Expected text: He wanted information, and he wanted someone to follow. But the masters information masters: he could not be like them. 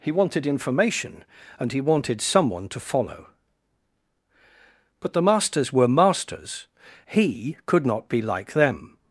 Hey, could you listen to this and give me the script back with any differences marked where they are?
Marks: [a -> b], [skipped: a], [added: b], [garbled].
He wanted information, and he wanted someone to follow. But the masters [information -> were] masters: he could not be like them.